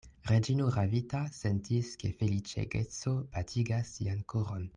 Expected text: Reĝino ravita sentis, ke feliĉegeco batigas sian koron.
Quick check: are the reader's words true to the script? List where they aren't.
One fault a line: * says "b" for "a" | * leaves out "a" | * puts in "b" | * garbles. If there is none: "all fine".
all fine